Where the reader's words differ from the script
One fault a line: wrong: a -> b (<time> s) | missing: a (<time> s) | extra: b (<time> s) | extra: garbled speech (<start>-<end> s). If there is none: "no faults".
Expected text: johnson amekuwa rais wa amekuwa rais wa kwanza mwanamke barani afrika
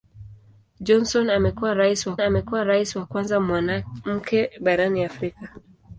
no faults